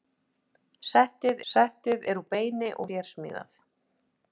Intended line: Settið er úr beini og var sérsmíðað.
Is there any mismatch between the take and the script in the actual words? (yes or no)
yes